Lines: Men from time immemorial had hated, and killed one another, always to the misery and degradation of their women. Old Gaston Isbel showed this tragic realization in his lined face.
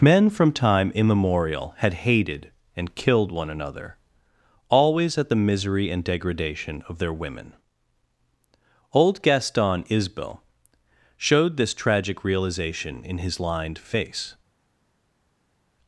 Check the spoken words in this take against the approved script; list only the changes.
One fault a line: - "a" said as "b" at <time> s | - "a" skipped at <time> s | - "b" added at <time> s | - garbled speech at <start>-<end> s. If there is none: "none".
- "to" said as "at" at 5.2 s